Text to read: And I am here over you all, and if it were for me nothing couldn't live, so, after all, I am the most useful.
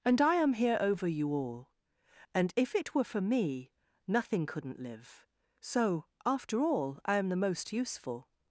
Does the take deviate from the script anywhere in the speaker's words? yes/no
no